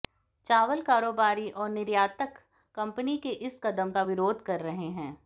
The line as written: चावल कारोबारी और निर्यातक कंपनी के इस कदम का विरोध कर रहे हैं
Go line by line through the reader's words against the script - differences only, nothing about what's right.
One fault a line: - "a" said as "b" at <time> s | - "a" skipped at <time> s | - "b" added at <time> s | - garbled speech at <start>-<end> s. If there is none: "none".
none